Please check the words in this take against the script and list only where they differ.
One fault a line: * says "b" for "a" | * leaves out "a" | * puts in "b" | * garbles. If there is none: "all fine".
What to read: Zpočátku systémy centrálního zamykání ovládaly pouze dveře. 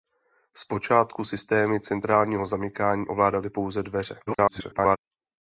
* garbles